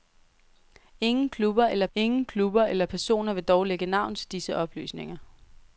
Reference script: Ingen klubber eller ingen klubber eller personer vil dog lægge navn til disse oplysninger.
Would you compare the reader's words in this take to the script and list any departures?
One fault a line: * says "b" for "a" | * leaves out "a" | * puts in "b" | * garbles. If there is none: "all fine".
all fine